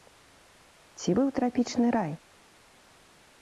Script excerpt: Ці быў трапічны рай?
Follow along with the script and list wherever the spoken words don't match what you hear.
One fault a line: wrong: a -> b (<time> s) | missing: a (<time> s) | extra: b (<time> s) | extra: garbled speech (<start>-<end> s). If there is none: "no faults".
no faults